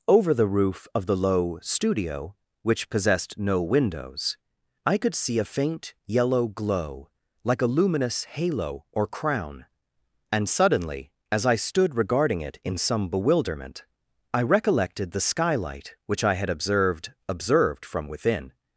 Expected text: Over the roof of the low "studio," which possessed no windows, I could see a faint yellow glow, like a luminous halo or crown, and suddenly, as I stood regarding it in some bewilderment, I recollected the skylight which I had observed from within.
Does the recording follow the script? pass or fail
fail